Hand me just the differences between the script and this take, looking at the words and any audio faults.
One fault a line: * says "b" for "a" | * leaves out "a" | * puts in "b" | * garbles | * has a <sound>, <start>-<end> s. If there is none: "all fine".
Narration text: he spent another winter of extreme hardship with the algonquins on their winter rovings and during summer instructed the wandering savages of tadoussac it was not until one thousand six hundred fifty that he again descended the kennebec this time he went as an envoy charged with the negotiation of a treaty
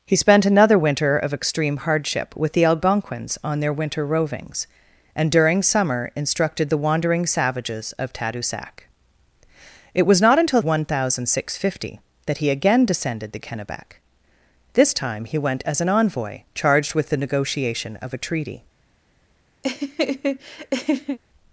* has a laugh, 19.6-21.2 s